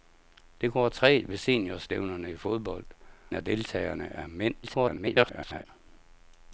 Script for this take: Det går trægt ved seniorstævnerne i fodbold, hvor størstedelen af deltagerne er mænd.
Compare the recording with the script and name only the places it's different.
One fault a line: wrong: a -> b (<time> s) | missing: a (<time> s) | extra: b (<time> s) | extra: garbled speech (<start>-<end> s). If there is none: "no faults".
missing: hvor størstedelen (2.9 s)
extra: garbled speech (4.6-5.7 s)